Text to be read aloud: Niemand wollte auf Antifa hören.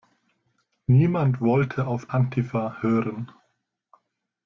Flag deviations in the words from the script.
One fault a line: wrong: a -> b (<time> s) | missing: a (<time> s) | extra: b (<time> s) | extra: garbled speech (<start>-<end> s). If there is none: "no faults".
no faults